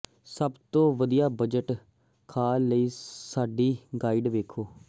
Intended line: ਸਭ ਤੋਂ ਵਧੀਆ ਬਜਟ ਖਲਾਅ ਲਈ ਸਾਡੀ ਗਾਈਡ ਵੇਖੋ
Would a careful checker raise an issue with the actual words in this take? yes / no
no